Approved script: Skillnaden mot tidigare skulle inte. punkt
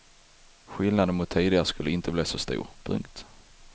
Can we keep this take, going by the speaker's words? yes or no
no